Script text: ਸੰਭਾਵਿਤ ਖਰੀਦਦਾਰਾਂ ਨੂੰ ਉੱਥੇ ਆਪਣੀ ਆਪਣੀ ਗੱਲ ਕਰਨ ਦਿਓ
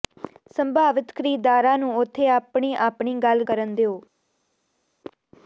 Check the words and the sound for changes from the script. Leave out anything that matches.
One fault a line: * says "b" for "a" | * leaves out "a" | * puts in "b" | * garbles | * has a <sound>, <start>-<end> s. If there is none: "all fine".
all fine